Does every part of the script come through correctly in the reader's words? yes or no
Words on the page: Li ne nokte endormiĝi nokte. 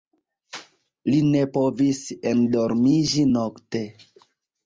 no